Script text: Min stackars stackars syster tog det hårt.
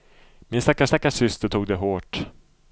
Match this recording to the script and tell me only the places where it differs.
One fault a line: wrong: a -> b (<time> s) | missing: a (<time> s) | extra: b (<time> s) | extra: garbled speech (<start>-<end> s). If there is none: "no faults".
no faults